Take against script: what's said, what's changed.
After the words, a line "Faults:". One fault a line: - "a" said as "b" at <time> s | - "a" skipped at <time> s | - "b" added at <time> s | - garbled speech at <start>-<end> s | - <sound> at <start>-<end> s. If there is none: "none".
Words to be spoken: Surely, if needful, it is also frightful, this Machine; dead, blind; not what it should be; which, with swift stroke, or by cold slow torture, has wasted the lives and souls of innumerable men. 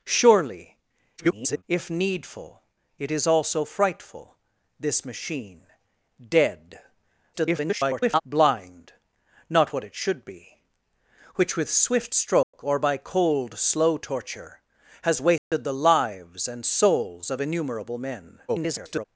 Surely, [garbled] if needful, it is also frightful, this Machine; dead, [garbled] blind; not what it should be; which, with swift stroke, or by cold slow torture, has wasted the lives and souls of innumerable men. [garbled]
Faults:
- garbled speech at 1.2-1.6 s
- garbled speech at 7.3-8.2 s
- dropout at 12.4-12.5 s
- dropout at 15.4-15.5 s
- garbled speech at 18.5-19.0 s